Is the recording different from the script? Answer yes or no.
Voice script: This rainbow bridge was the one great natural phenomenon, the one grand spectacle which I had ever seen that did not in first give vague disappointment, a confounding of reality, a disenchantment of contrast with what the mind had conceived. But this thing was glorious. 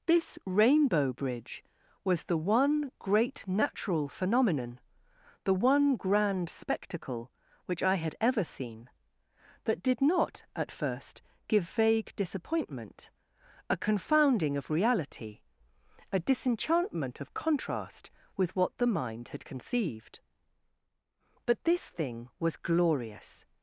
yes